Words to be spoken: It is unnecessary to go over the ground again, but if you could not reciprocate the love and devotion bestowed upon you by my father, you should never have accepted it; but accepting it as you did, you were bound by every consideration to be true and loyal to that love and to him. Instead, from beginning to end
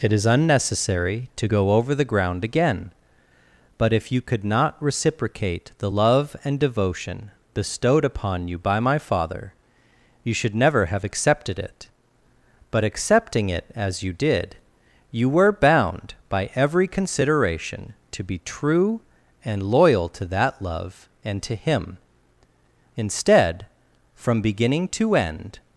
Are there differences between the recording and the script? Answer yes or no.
no